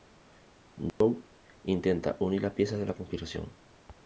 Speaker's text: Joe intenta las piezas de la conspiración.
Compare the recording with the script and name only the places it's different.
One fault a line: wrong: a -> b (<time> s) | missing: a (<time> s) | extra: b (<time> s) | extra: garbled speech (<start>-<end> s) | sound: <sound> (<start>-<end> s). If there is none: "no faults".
sound: dropout (0.9-1.0 s)
extra: unir (2.2 s)